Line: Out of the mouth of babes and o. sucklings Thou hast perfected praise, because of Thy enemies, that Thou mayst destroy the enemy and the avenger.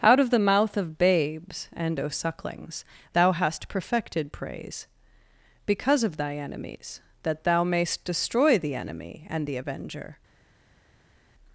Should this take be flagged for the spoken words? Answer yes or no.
no